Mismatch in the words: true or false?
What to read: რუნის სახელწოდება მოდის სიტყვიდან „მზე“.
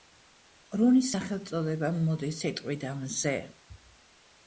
false